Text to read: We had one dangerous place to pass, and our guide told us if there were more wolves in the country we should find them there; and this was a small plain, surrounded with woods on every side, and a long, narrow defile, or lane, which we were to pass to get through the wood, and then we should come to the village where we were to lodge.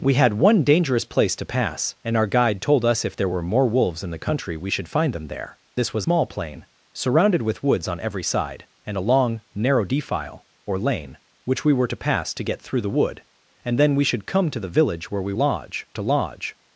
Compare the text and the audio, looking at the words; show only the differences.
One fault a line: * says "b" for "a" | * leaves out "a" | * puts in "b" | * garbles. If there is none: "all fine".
* leaves out "and"
* leaves out "a"
* says "lodge" for "were"